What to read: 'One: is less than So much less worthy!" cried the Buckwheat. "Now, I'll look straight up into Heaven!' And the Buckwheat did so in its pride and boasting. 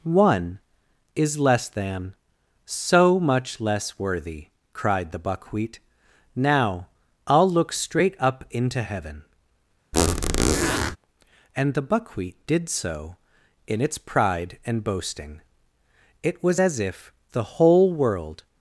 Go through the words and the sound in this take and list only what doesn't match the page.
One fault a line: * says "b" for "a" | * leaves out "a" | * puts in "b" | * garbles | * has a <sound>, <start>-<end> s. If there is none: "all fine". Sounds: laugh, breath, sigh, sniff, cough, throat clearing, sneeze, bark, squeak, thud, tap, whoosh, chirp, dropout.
* has a squeak, 9.9-11.0 s
* puts in "It was as if the whole world"